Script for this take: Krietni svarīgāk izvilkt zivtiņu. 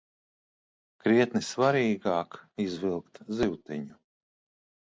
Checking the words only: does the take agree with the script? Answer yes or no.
yes